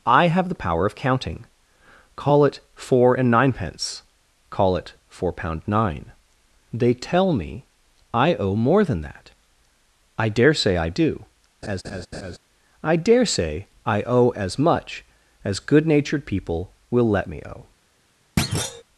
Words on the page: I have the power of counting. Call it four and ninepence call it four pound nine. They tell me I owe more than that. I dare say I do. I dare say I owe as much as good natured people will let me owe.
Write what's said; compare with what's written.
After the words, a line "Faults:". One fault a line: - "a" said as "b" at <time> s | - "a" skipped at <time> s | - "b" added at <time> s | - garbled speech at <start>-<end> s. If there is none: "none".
I have the power of counting. Call it four and ninepence call it four pound nine. They tell me I owe more than that. I dare say I do. I dare say I owe as much as good natured people will let me owe.
Faults:
none